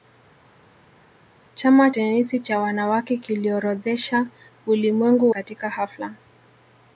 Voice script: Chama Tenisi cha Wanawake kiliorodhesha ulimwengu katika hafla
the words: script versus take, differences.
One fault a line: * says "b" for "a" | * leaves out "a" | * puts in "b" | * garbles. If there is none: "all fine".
all fine